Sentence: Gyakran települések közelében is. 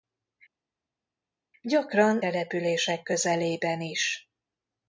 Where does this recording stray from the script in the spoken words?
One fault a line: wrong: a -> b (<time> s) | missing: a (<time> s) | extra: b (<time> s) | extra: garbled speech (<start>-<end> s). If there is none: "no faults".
no faults